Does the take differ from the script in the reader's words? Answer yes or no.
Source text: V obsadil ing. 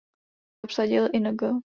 no